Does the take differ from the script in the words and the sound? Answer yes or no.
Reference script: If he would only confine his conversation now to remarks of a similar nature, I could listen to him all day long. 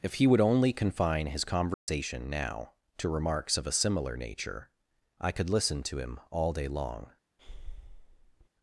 yes